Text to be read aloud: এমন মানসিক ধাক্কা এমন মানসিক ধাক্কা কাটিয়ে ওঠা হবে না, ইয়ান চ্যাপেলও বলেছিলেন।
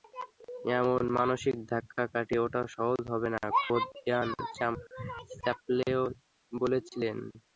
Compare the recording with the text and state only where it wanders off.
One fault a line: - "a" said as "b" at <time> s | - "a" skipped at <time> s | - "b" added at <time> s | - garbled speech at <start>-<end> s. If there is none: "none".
- "এমন মানসিক ধাক্কা" skipped at 2.0 s
- "সহজ" added at 2.7 s
- "খোদ" added at 3.6 s